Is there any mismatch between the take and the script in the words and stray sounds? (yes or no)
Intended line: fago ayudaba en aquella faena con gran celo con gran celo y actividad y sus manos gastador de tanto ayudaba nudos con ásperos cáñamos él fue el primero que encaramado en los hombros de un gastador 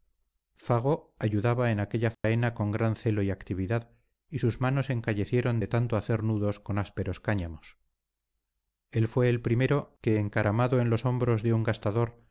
yes